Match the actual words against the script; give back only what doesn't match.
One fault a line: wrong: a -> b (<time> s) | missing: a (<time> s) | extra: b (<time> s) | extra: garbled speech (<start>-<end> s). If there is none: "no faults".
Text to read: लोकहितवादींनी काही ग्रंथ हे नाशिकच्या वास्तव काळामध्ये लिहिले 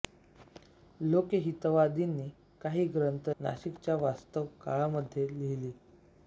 missing: हे (3.3 s)